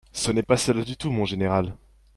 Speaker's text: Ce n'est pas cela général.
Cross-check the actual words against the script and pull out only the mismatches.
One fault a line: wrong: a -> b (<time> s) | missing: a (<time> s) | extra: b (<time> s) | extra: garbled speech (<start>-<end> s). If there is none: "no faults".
extra: du tout mon (0.8 s)